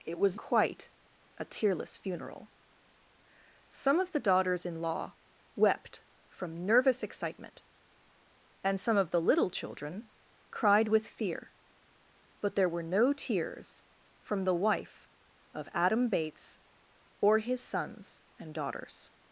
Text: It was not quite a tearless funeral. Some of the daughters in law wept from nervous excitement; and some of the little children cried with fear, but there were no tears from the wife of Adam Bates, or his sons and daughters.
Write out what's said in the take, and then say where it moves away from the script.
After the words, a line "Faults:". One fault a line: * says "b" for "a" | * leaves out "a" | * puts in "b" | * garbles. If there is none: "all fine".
It was quite a tearless funeral. Some of the daughters in law wept from nervous excitement; and some of the little children cried with fear, but there were no tears from the wife of Adam Bates, or his sons and daughters.
Faults:
* leaves out "not"